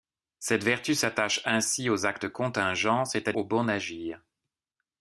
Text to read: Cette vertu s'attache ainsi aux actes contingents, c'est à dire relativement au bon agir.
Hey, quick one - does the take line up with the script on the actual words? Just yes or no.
no